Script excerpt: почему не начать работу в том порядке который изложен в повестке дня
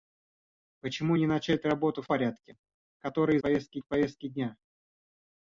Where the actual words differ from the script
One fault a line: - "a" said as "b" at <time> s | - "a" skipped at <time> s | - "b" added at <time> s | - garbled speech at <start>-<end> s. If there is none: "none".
- "том" skipped at 2.1 s
- "изложен" said as "повестке" at 3.4 s